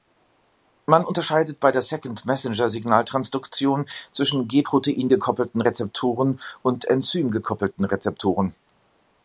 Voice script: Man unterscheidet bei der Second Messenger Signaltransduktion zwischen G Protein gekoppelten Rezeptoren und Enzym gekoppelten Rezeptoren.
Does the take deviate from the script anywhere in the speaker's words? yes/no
no